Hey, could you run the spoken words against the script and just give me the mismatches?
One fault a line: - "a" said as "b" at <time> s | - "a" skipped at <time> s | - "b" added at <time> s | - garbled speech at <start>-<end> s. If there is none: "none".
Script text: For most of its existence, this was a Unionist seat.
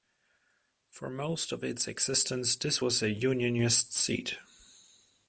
none